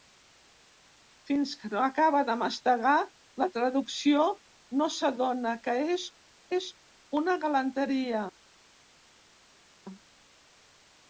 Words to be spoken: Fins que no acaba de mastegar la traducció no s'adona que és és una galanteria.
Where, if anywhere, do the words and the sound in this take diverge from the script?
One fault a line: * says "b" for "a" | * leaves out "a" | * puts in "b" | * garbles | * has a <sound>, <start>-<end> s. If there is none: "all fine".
all fine